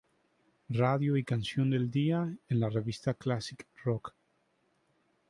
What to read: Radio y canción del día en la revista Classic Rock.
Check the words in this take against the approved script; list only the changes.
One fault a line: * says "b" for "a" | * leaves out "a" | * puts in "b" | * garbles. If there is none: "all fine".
all fine